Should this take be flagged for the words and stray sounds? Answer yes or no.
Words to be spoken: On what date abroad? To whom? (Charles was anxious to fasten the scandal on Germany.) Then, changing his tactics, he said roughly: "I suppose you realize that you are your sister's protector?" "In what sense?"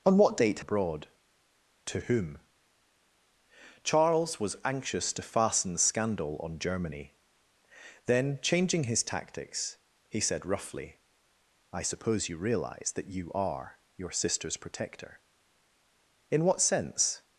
no